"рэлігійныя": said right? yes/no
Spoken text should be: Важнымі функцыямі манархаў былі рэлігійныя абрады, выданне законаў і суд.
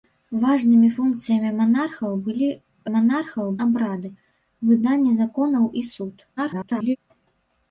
no